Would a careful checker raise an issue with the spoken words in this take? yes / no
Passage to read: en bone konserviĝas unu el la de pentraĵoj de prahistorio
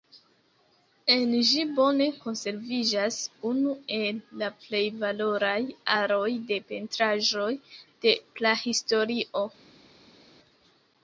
yes